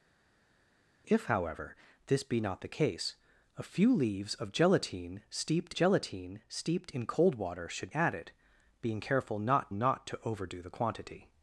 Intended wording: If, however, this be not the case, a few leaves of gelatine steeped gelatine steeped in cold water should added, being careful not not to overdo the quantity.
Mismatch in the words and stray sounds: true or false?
false